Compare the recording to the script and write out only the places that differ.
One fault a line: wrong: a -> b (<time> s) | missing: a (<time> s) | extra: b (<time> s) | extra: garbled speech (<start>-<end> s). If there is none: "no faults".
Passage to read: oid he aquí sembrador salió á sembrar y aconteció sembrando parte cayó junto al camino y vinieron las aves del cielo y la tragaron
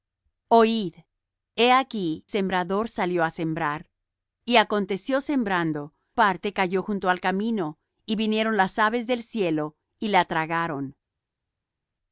no faults